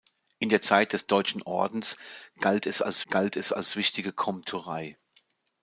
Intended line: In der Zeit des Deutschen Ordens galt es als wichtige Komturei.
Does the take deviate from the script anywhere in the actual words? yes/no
yes